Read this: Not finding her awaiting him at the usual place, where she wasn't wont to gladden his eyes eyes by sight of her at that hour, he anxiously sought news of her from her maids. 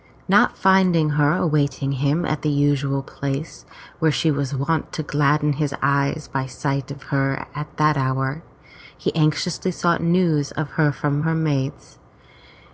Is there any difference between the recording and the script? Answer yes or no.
yes